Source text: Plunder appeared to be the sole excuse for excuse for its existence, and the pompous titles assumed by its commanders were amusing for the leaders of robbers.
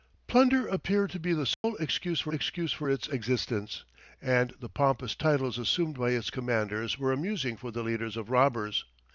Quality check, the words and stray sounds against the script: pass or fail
fail